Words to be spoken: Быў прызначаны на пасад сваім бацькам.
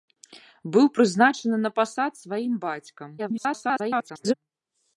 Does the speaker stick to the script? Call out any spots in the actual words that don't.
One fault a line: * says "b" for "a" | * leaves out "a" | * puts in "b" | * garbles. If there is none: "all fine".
* garbles